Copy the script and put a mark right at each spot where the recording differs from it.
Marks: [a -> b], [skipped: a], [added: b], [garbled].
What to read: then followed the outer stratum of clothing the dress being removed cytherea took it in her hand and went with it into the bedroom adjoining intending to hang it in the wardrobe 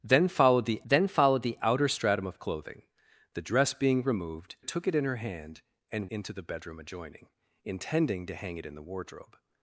then followed the [added: then followed the] outer stratum of clothing the dress being removed [skipped: cytherea] took it in her hand and [skipped: went with it] into the bedroom adjoining intending to hang it in the wardrobe